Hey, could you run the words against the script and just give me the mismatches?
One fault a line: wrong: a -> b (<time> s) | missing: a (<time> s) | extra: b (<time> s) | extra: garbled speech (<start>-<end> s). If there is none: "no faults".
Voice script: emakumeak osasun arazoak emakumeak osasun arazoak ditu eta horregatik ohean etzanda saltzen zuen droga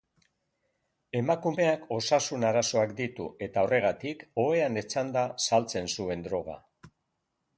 missing: emakumeak osasun arazoak (3.0 s)